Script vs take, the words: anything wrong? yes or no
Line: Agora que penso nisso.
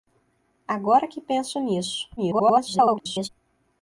yes